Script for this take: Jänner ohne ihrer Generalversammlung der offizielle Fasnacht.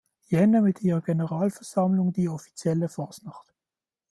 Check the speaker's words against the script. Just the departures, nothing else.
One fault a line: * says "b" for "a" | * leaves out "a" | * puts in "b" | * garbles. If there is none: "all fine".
* says "mit" for "ohne"
* says "die" for "der"